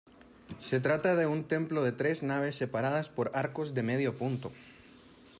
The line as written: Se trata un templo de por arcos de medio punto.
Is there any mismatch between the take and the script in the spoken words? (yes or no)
yes